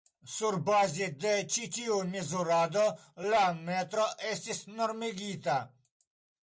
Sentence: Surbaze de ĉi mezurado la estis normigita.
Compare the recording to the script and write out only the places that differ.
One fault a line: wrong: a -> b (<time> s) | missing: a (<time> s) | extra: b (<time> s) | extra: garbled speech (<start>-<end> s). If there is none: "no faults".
extra: tiu (1.8 s)
extra: metro (3.6 s)